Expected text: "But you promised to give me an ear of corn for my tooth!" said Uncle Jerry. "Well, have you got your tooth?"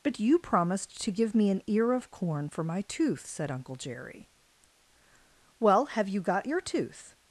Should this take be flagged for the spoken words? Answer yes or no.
no